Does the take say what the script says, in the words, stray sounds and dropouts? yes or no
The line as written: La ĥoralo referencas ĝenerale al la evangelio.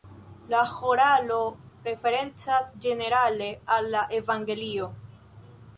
yes